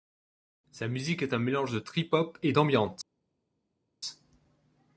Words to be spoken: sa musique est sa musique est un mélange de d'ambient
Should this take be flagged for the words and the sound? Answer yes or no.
yes